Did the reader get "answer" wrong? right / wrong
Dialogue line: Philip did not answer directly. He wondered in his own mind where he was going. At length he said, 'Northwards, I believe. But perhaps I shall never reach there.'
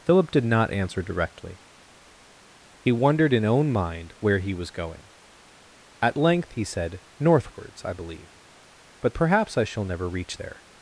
right